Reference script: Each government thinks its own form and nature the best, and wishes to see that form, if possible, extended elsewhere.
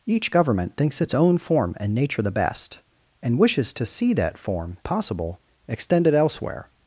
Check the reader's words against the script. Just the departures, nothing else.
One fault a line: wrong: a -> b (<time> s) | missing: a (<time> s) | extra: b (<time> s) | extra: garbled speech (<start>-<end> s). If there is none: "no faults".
missing: if (4.8 s)